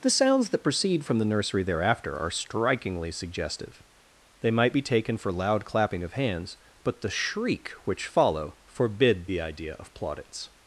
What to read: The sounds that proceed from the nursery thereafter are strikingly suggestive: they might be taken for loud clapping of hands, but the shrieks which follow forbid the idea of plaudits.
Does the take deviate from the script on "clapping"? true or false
false